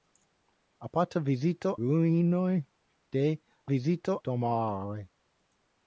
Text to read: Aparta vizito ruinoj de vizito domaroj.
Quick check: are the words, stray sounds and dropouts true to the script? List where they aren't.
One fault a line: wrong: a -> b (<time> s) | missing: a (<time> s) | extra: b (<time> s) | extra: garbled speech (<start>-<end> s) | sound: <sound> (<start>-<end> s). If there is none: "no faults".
no faults